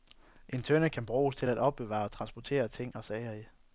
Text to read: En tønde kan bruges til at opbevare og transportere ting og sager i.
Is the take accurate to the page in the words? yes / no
yes